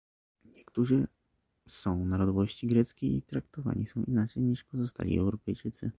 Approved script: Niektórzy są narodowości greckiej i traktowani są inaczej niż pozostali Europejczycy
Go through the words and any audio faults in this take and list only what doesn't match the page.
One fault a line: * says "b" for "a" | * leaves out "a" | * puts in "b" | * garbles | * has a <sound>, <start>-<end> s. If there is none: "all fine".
all fine